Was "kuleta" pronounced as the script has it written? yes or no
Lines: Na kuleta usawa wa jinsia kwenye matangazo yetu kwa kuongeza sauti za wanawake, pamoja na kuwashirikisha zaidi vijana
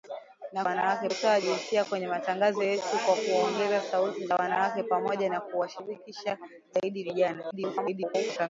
no